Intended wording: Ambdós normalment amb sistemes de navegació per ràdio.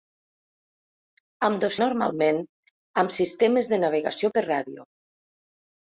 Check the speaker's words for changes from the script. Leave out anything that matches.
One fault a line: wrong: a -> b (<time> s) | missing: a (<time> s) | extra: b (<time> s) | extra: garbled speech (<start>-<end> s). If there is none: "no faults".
no faults